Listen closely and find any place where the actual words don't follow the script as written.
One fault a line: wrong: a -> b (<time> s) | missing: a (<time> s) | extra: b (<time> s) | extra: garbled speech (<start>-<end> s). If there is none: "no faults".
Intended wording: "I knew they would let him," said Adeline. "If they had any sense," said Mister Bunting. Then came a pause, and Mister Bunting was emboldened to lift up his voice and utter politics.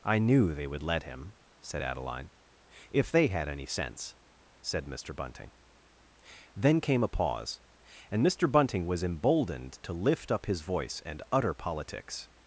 no faults